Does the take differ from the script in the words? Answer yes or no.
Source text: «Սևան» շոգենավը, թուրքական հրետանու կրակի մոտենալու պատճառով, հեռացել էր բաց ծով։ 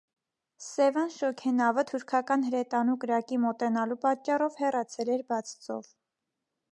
no